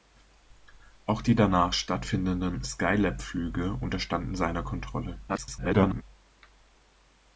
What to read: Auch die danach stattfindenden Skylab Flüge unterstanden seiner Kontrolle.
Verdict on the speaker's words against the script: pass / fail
fail